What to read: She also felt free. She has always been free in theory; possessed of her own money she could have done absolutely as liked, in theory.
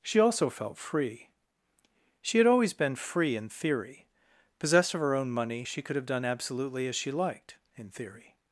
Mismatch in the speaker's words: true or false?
true